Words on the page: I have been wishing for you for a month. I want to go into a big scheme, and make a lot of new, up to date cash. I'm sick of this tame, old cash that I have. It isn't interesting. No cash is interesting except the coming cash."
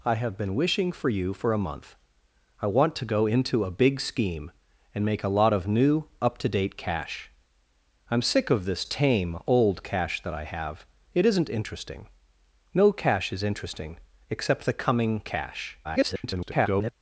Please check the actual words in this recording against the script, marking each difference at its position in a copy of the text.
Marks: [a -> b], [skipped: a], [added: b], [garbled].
I have been wishing for you for a month. I want to go into a big scheme, and make a lot of new, up to date cash. I'm sick of this tame, old cash that I have. It isn't interesting. No cash is interesting except the coming cash." [garbled]